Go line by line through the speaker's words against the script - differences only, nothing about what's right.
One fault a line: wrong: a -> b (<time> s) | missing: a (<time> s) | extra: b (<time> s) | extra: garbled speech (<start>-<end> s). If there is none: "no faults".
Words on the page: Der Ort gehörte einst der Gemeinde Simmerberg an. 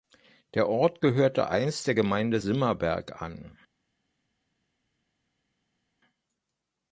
no faults